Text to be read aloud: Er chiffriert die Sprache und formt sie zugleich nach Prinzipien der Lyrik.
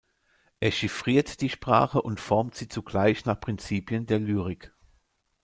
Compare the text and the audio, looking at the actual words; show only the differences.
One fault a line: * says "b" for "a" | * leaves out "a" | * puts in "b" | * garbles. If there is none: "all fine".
all fine